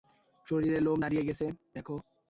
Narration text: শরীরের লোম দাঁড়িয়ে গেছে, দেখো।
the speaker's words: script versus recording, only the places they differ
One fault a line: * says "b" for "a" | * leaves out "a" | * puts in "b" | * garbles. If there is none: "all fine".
all fine